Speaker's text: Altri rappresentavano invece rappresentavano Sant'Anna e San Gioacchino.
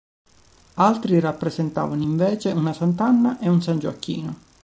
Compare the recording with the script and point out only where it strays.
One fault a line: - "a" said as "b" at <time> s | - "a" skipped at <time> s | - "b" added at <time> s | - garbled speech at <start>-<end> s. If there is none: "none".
- "rappresentavano" said as "una" at 2.5 s
- "un" added at 3.5 s